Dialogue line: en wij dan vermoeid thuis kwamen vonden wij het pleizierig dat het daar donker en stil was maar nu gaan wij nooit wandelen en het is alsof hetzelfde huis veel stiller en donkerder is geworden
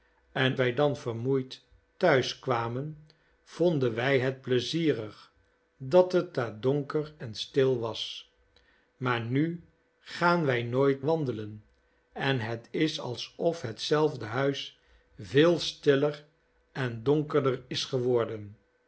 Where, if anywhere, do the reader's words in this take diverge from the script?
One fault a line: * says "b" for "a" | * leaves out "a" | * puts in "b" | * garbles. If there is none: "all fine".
all fine